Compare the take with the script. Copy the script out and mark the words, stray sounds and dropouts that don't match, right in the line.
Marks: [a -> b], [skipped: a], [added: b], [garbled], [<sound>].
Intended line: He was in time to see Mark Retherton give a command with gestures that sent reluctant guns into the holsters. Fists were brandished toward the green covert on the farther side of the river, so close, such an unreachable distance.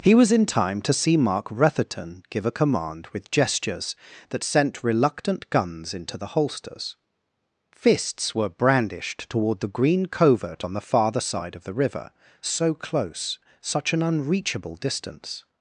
He was in time to see Mark Retherton give a command with gestures that sent reluctant guns into the holsters. Fists were brandished toward the green covert on the farther side of the river, so close, such an unreachable distance.